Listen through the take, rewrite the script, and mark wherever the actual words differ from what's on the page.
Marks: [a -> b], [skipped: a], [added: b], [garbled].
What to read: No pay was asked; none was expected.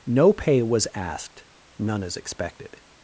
No pay was asked; none [was -> is] expected.